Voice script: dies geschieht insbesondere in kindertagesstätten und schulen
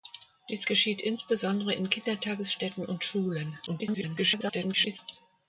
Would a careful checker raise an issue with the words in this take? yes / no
yes